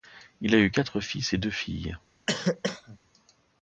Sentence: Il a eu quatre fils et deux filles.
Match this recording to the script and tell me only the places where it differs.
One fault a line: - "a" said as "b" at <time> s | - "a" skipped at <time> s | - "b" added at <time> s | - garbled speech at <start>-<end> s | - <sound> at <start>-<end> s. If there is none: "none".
- cough at 2.3-3.0 s